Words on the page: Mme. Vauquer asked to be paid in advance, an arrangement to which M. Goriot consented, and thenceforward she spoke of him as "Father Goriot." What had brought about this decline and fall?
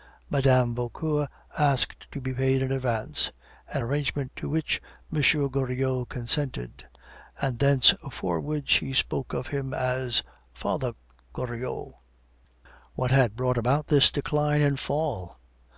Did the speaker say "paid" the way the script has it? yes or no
yes